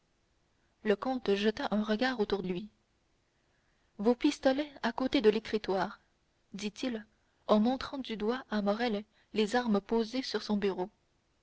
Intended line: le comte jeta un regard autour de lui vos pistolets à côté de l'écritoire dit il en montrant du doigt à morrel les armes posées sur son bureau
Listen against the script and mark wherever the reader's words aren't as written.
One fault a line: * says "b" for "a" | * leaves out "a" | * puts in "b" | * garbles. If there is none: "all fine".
* leaves out "de"